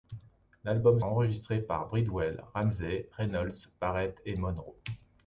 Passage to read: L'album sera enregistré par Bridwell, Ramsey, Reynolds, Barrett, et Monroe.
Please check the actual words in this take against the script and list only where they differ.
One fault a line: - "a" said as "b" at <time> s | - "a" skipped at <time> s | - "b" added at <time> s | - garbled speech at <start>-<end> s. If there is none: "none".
- "sera" skipped at 1.0 s